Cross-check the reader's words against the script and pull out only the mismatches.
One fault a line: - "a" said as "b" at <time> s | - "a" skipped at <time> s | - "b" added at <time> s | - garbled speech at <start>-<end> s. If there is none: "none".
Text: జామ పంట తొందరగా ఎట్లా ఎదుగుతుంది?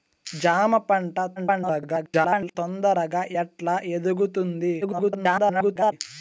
- garbled speech at 1.4-2.6 s
- garbled speech at 4.8-5.9 s